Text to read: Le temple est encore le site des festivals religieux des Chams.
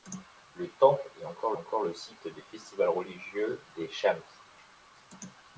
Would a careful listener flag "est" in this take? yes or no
no